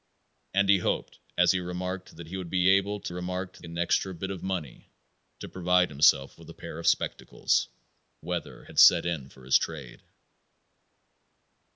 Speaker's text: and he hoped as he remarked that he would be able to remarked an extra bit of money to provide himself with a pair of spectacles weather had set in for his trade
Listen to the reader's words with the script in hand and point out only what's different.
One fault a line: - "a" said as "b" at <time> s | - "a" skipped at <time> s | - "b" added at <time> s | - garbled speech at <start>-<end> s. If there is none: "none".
none